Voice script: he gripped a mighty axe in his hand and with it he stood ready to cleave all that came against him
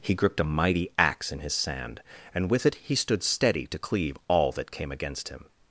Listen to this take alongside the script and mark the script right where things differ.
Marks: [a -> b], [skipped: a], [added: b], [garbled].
he gripped a mighty axe in his [hand -> sand] and with it he stood [ready -> steady] to cleave all that came against him